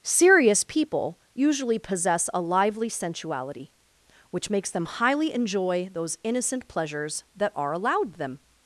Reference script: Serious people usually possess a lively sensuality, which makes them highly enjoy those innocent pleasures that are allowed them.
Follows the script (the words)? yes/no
yes